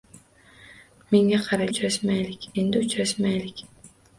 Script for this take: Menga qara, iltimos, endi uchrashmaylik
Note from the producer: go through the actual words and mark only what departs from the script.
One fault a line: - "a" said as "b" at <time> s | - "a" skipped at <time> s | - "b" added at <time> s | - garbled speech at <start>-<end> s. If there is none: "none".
- "iltimos" said as "uchrashmaylik" at 1.7 s